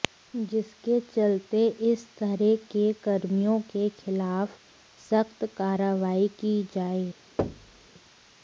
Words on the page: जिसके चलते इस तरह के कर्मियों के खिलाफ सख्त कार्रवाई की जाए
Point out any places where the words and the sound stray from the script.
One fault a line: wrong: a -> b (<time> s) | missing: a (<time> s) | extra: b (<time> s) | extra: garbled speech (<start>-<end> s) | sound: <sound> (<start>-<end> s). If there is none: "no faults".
sound: thud (7.4-7.9 s)